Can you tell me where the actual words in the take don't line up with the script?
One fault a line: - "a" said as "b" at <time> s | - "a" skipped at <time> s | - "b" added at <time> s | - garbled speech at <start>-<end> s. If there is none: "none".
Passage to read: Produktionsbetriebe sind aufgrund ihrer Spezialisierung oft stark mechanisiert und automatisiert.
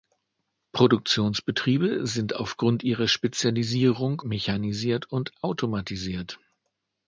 - "oft stark" skipped at 4.2 s